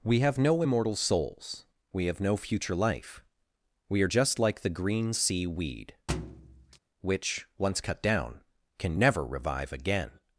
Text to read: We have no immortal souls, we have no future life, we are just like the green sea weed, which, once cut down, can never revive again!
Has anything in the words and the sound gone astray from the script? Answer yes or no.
yes